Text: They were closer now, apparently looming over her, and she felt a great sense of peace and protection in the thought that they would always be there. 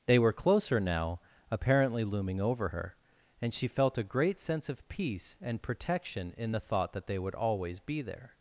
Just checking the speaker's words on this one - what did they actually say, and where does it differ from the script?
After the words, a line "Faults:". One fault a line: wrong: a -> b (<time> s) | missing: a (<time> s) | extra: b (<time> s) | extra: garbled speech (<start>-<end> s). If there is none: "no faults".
They were closer now, apparently looming over her, and she felt a great sense of peace and protection in the thought that they would always be there.
Faults:
no faults